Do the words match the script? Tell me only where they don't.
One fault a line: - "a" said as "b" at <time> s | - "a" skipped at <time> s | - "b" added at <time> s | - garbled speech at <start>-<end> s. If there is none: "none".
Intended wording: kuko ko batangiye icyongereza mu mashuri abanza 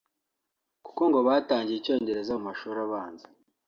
- "ko" said as "ngo" at 1.1 s